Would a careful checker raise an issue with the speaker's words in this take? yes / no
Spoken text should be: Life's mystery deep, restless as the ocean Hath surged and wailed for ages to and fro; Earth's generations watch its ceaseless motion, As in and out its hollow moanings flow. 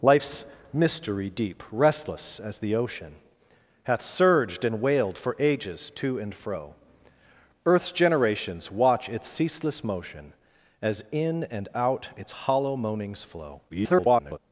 yes